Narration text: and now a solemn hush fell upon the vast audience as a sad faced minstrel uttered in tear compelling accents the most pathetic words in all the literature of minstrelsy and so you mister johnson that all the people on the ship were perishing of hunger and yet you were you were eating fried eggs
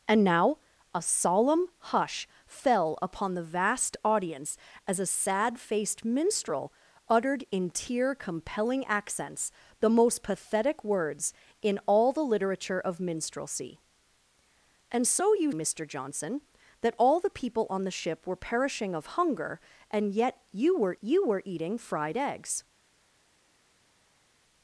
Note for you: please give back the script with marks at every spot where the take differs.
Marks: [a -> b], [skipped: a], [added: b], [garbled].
and now a solemn hush fell upon the vast audience as a sad faced minstrel uttered in tear compelling accents the most pathetic words in all the literature of minstrelsy and so you mister johnson that all the people on the ship were perishing of hunger and yet you were you were eating fried eggs